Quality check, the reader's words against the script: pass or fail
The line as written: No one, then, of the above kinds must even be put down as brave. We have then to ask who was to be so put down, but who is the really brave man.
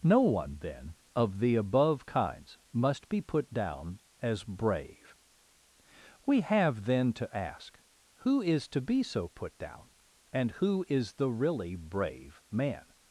fail